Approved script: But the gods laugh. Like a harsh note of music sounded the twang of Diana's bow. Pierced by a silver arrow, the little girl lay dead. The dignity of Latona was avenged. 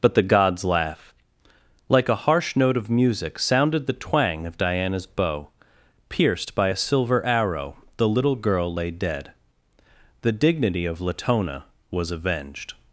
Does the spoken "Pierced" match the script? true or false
true